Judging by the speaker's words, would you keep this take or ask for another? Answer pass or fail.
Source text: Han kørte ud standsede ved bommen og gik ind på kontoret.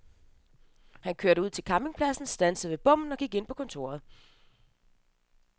fail